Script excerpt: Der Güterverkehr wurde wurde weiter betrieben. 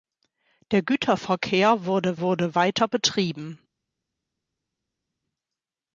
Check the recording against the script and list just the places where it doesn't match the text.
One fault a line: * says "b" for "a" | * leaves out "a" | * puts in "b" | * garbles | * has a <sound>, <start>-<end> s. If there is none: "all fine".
all fine